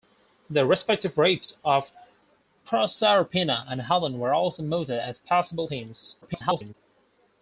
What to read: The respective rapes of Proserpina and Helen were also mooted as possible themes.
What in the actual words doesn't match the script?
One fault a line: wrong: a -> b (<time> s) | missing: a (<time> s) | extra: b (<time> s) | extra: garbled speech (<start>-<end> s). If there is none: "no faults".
extra: garbled speech (6.2-6.7 s)